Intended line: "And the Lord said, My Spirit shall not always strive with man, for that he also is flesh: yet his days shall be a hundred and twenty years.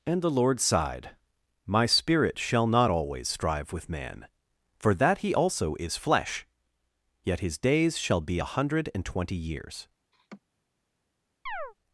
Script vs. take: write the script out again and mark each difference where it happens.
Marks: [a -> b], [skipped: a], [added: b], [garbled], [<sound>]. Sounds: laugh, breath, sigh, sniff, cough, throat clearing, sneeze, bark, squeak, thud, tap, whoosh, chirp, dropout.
"And the Lord [said, -> sighed] My Spirit shall not always strive with man, for that he also is flesh: yet his days shall be a hundred and twenty years. [laugh] [chirp]